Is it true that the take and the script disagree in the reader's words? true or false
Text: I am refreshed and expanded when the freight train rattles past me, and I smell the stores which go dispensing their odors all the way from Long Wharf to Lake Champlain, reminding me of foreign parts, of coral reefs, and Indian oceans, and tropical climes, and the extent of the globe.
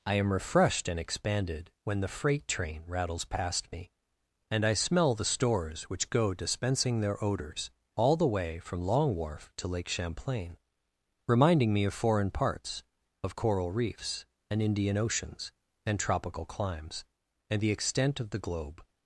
false